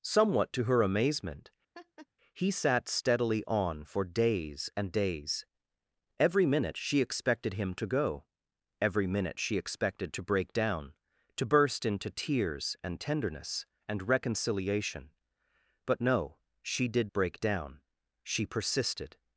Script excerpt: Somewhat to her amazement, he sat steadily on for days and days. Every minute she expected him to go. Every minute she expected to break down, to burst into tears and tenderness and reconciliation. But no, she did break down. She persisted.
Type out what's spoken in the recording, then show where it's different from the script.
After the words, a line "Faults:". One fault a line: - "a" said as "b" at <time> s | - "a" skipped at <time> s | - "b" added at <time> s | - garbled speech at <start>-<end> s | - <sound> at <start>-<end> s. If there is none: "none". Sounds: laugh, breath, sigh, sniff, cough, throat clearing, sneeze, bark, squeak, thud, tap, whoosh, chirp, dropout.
Somewhat to her amazement, he sat steadily on for days and days. Every minute she expected him to go. Every minute she expected to break down, to burst into tears and tenderness and reconciliation. But no, she did break down. She persisted.
Faults:
- laugh at 1.7-2.1 s